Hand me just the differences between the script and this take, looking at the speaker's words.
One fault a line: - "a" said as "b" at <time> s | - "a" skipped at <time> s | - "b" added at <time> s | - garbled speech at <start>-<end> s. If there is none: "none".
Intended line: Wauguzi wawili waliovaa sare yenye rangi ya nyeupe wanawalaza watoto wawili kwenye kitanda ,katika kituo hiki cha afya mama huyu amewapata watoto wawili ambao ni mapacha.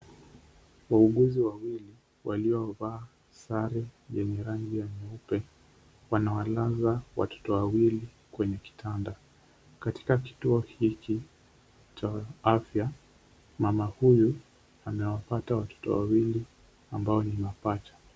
none